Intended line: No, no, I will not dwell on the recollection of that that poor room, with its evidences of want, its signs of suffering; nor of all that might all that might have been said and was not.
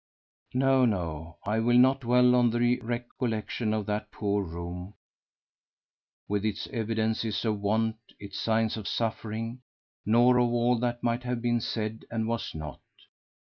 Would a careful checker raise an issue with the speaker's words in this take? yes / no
yes